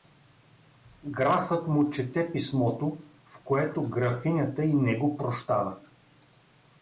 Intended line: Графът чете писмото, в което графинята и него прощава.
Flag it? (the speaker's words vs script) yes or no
yes